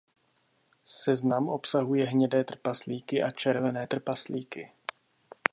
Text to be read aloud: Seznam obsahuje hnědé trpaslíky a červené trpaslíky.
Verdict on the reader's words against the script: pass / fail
pass